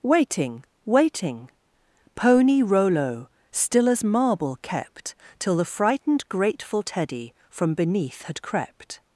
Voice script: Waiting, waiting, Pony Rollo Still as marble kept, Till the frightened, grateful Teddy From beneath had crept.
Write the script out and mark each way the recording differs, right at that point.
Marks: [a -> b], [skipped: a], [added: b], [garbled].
Waiting, waiting, Pony Rollo Still as marble kept, Till the frightened, grateful Teddy From beneath had crept.